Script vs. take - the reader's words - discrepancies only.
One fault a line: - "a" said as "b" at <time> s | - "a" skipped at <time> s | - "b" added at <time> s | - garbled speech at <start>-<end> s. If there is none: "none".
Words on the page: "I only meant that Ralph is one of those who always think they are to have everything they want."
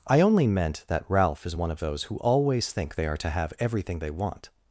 none